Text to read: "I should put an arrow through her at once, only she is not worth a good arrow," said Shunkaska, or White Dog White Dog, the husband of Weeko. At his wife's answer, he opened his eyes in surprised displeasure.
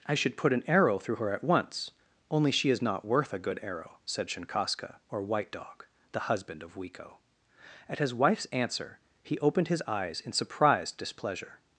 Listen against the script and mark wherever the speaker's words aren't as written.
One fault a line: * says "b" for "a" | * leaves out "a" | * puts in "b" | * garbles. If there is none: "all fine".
* leaves out "White Dog"